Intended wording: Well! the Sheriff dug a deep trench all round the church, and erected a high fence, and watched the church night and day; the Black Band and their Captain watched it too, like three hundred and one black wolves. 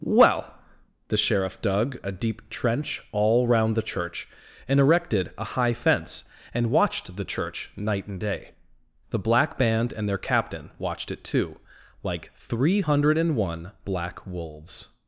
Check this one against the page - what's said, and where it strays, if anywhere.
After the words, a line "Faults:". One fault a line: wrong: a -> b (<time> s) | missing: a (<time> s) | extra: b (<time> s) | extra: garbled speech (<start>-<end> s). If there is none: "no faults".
Well! the Sheriff dug a deep trench all round the church, and erected a high fence, and watched the church night and day; the Black Band and their Captain watched it too, like three hundred and one black wolves.
Faults:
no faults